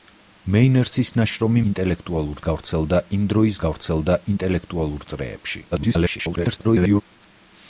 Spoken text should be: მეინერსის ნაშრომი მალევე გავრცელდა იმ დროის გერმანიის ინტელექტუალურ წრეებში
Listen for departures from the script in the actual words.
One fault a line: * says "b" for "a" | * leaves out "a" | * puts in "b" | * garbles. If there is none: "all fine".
* says "ინტელექტუალურ" for "მალევე"
* says "გავრცელდა" for "გერმანიის"
* garbles